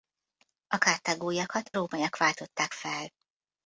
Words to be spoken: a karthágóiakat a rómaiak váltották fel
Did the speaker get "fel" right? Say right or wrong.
right